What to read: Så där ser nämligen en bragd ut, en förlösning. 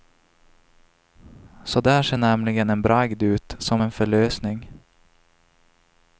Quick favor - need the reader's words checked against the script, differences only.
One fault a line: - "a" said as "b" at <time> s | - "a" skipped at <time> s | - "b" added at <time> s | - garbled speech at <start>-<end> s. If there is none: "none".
- "som" added at 3.6 s